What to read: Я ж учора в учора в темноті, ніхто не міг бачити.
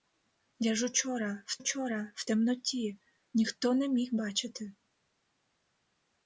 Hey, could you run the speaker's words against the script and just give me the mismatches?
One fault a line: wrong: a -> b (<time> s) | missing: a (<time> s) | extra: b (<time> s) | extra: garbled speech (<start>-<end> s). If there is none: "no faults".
no faults